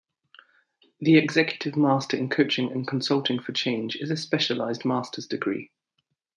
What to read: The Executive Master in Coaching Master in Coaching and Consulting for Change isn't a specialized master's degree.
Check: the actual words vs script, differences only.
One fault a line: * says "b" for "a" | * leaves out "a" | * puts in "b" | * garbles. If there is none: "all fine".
* leaves out "Master in Coaching"
* says "is" for "isn't"